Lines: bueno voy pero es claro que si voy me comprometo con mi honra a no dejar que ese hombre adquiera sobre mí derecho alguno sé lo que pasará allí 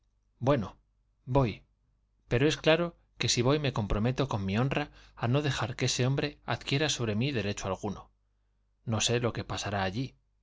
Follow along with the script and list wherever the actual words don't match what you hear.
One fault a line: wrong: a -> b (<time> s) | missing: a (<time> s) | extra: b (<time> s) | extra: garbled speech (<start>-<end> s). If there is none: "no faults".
extra: no (8.8 s)